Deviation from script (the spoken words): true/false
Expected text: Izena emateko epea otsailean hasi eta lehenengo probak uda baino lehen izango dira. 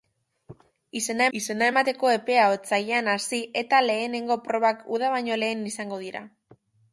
true